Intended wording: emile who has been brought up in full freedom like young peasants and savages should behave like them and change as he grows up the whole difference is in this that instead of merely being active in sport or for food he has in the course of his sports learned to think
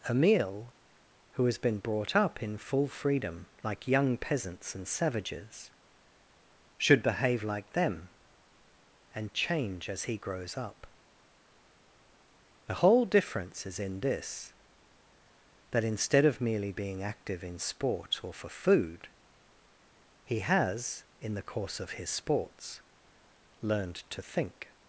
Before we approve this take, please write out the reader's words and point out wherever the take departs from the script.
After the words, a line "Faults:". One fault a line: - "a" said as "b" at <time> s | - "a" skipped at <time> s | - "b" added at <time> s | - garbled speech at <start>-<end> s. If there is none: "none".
emile who has been brought up in full freedom like young peasants and savages should behave like them and change as he grows up the whole difference is in this that instead of merely being active in sport or for food he has in the course of his sports learned to think
Faults:
none